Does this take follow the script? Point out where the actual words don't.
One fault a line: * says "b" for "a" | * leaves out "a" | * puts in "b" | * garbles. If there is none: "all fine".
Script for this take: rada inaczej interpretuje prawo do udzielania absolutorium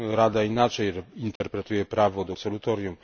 * leaves out "udzielania"